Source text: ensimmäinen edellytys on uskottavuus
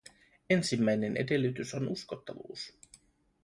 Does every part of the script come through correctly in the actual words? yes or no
yes